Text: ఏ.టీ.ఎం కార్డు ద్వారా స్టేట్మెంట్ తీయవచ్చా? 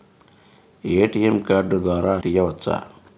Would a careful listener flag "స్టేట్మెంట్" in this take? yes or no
yes